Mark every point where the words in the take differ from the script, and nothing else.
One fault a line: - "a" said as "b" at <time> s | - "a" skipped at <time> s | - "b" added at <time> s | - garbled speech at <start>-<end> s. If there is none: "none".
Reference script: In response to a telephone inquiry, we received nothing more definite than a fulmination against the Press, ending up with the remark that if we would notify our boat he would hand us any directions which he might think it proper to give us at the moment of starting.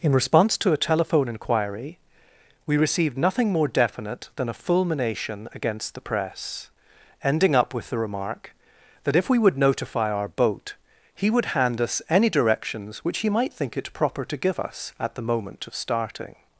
none